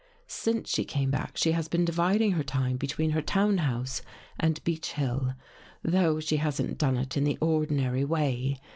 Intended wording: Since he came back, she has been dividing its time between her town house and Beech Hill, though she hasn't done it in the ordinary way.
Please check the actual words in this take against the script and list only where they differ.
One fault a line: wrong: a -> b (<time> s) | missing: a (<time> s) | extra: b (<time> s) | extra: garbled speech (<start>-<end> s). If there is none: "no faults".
wrong: he -> she (0.7 s)
wrong: its -> her (2.3 s)